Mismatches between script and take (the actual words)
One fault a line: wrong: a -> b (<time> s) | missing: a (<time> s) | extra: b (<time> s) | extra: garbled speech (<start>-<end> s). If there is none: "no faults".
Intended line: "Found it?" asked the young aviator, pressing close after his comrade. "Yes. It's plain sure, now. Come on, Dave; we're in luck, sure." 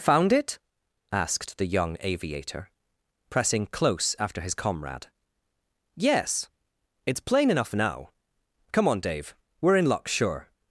wrong: sure -> enough (7.5 s)